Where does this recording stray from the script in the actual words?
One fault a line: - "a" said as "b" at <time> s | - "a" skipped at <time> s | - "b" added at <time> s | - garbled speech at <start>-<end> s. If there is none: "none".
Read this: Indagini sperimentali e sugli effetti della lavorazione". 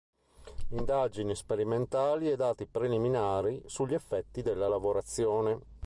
- "dati preliminari" added at 2.4 s